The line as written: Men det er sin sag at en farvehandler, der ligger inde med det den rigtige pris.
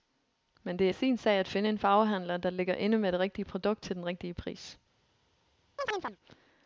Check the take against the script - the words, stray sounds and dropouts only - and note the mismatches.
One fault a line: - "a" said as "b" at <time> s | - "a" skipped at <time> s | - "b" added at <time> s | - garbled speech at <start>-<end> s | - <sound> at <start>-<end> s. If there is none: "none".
- "finde" added at 1.5 s
- "rigtige produkt til" added at 3.2 s
- chirp at 5.8-6.2 s